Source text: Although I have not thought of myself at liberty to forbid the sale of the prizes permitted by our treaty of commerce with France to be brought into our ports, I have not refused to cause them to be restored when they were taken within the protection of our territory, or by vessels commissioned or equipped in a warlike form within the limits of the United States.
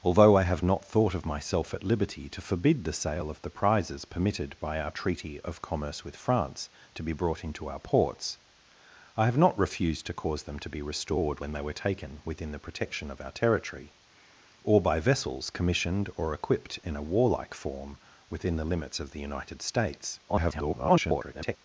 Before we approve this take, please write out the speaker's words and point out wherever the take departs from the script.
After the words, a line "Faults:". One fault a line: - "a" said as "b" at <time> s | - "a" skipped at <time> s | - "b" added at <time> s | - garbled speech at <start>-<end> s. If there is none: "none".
Although I have not thought of myself at liberty to forbid the sale of the prizes permitted by our treaty of commerce with France to be brought into our ports, I have not refused to cause them to be restored when they were taken within the protection of our territory, or by vessels commissioned or equipped in a warlike form within the limits of the United States. [garbled]
Faults:
- garbled speech at 20.3-21.6 s